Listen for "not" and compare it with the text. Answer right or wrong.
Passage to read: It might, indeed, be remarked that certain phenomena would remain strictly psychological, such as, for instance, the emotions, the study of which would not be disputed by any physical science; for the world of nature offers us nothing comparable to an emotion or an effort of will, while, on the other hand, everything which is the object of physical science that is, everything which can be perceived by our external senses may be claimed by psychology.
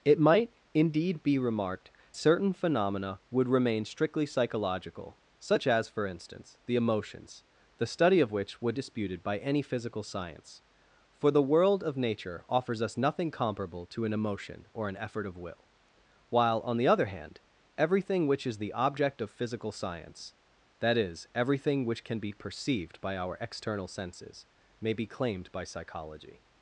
wrong